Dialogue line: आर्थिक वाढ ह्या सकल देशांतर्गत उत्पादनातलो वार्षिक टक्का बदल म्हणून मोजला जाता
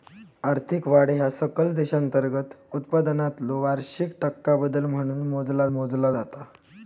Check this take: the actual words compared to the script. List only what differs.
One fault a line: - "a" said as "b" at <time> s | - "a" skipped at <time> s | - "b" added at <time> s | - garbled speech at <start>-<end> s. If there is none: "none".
- "मोजला" added at 5.7 s